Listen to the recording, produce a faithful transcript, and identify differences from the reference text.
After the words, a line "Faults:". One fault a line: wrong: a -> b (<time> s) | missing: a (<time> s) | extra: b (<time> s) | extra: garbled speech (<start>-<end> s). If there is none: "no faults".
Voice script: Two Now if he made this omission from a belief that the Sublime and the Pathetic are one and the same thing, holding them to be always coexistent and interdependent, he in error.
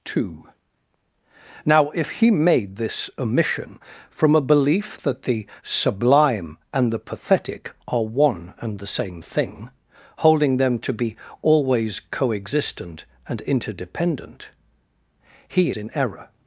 Two Now if he made this omission from a belief that the Sublime and the Pathetic are one and the same thing, holding them to be always coexistent and interdependent, he in error.
Faults:
no faults